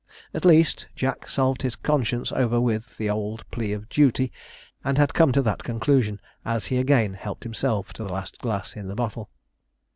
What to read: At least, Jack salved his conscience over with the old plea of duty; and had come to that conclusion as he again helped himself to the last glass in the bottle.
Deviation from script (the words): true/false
false